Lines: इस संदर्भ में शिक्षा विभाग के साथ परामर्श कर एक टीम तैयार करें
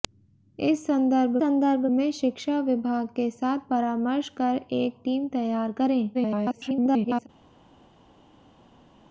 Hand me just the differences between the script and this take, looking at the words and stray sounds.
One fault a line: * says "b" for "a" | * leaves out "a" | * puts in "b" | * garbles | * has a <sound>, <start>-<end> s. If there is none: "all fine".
* puts in "संदर्भ"
* garbles